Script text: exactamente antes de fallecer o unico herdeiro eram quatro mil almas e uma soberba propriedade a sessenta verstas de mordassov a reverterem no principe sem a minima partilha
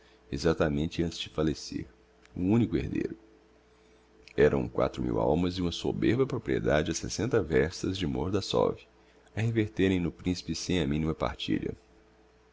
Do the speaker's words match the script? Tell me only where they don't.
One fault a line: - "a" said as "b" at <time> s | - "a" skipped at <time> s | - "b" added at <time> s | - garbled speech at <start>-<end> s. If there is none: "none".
none